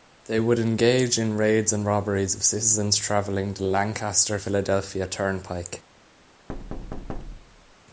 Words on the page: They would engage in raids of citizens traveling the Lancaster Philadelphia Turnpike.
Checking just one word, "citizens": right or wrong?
right